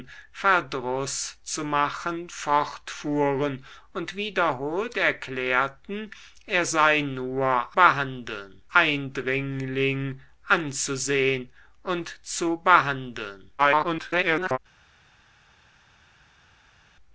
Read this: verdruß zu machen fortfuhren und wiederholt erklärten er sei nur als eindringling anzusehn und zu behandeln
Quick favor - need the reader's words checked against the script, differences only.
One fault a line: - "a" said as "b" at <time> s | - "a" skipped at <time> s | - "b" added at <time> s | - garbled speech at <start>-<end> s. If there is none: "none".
- "als" said as "behandeln" at 7.7 s
- garbled speech at 13.6-14.6 s